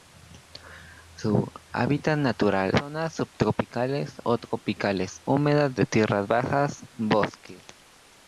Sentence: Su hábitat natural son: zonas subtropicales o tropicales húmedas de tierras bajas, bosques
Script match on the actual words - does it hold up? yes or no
no